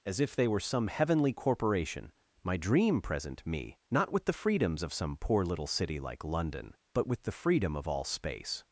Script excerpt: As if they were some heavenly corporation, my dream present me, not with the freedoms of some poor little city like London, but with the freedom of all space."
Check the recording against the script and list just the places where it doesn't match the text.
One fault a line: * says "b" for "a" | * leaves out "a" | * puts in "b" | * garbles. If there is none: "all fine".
all fine